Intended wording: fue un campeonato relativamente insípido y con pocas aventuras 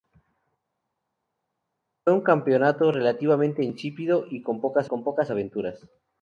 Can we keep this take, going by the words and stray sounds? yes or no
no